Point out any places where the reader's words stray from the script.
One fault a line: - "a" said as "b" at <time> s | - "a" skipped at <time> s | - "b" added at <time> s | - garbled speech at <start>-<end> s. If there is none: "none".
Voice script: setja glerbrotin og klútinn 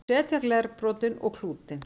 none